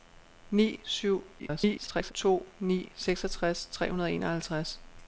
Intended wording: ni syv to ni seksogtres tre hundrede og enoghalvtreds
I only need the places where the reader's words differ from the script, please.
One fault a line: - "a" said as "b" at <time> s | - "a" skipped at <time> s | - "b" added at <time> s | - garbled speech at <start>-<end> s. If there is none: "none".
- garbled speech at 1.4-2.1 s